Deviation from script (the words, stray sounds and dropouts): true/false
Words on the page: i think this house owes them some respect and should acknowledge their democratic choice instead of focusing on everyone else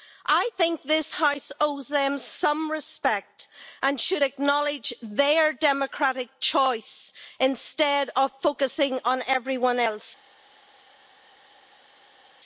false